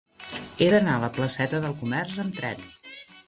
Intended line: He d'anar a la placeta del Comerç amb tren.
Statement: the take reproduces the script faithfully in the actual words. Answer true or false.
true